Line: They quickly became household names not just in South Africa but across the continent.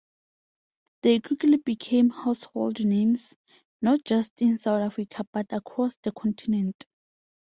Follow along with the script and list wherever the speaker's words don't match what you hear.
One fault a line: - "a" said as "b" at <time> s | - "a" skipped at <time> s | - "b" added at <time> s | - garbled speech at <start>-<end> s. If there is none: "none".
none